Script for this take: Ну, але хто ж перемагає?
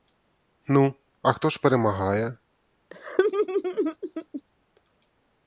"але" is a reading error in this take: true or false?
true